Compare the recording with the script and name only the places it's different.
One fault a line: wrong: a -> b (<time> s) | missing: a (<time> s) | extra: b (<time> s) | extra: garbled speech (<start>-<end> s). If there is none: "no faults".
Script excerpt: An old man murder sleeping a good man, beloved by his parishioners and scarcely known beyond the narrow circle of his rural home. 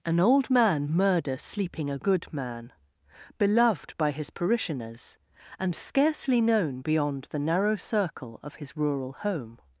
no faults